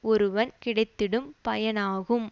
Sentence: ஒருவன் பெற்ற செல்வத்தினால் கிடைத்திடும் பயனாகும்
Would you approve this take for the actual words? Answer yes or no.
no